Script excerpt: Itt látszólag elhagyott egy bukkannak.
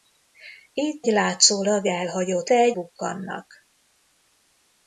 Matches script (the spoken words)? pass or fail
pass